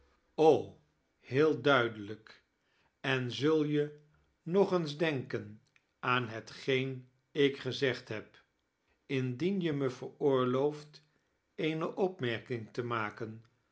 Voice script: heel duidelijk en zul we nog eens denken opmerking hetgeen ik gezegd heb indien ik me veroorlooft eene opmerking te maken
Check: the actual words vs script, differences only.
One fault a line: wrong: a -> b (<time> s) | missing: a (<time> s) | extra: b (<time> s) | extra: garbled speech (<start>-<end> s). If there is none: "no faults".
wrong: we -> je (3.6 s)
wrong: opmerking -> aan (6.0 s)
wrong: ik -> je (9.6 s)